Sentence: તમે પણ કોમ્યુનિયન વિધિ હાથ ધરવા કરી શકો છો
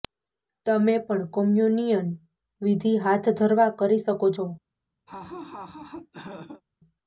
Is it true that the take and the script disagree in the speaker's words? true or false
false